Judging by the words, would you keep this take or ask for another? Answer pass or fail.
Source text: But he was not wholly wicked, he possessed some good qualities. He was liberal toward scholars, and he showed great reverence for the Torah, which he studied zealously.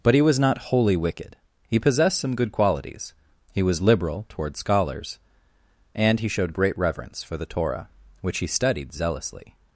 pass